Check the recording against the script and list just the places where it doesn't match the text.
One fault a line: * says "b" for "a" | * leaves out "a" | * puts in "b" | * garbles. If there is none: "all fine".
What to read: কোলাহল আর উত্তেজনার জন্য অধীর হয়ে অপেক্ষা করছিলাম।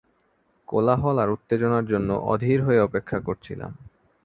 all fine